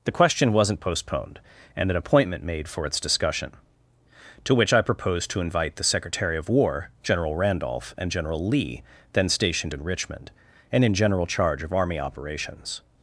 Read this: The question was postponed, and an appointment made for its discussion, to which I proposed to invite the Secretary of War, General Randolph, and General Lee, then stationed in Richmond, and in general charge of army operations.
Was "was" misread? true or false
true